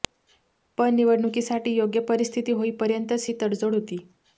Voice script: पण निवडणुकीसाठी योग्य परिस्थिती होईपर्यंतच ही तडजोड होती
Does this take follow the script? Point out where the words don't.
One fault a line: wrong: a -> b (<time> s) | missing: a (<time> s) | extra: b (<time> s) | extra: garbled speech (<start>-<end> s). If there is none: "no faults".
no faults